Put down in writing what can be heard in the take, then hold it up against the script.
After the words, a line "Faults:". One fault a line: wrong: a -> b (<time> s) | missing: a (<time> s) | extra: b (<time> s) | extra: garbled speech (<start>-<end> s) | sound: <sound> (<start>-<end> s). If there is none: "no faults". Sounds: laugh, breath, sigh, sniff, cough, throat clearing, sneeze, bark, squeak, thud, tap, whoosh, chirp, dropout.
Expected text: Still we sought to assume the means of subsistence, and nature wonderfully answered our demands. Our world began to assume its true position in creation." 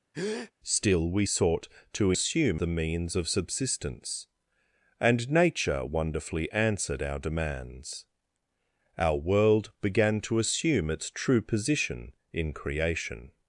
Still we sought to assume the means of subsistence, and nature wonderfully answered our demands. Our world began to assume its true position in creation."
Faults:
sound: breath (0.1-0.5 s)